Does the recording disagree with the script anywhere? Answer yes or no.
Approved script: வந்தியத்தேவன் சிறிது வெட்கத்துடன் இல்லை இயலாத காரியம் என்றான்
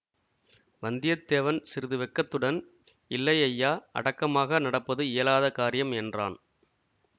yes